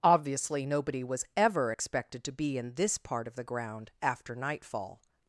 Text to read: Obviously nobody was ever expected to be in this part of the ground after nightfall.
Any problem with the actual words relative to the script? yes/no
no